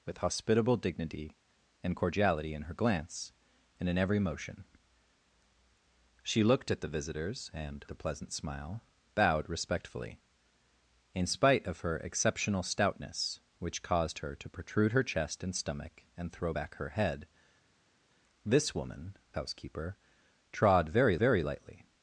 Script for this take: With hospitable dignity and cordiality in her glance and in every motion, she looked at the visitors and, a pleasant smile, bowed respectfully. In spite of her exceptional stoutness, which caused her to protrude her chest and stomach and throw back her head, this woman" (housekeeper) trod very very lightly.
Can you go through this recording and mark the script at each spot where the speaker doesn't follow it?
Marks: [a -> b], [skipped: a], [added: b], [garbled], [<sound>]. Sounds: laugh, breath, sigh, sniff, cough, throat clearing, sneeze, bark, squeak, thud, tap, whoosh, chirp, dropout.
With hospitable dignity and cordiality in her glance and in every motion, she looked at the visitors and, a pleasant smile, bowed respectfully. In spite of her exceptional stoutness, which caused her to protrude her chest and stomach and throw back her head, this woman" (housekeeper) trod very very lightly.